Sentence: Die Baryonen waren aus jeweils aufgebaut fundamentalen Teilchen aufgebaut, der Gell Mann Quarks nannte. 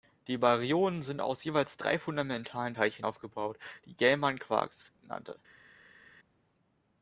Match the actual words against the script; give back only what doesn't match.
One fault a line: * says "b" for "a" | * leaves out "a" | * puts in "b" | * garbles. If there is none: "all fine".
* says "sind" for "waren"
* says "drei" for "aufgebaut"
* says "die" for "der"